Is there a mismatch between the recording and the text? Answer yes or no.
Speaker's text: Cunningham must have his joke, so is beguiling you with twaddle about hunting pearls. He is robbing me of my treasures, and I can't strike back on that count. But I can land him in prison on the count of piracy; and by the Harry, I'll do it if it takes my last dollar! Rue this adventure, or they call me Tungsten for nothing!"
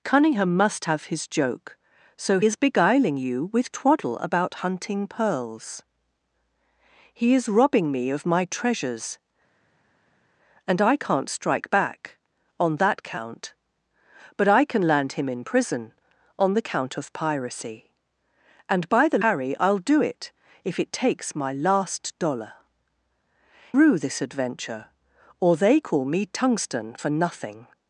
no